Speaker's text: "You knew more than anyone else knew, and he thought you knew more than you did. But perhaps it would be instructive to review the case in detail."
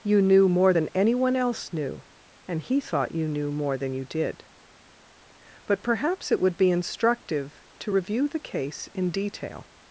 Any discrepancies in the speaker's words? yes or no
no